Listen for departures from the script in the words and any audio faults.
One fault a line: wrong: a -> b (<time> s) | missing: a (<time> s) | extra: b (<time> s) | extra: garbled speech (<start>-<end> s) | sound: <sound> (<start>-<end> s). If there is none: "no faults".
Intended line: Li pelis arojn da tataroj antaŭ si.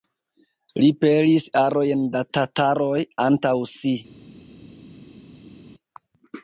no faults